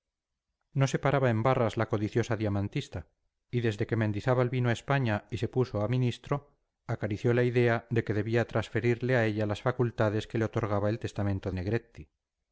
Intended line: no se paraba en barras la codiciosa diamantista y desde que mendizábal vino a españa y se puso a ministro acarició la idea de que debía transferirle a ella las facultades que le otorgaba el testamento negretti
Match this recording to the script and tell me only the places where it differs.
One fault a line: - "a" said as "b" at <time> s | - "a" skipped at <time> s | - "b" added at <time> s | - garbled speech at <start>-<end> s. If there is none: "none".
none